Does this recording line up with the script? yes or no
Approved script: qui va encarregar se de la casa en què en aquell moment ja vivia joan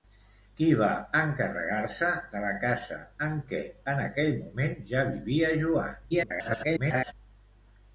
no